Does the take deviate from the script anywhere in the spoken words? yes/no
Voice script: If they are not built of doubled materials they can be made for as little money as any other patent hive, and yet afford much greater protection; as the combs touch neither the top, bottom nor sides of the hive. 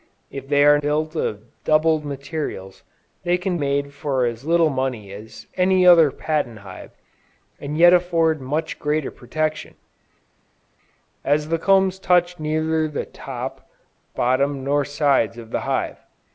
yes